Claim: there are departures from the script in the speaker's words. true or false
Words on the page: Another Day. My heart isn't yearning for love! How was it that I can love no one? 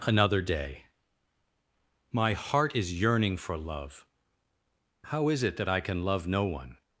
true